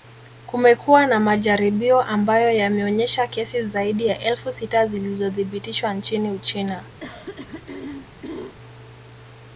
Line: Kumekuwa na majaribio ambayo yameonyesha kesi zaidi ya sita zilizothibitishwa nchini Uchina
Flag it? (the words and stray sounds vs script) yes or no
yes